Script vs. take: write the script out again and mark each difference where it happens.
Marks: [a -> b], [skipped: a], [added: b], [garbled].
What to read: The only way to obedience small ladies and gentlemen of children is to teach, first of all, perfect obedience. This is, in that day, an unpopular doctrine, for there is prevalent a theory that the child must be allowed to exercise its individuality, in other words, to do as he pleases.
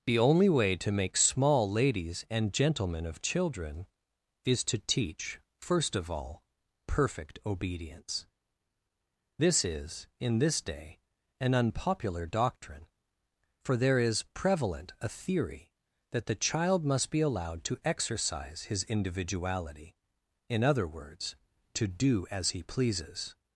The only way to [obedience -> make] small ladies and gentlemen of children is to teach, first of all, perfect obedience. This is, in [that -> this] day, an unpopular doctrine, for there is prevalent a theory that the child must be allowed to exercise [its -> his] individuality, in other words, to do as he pleases.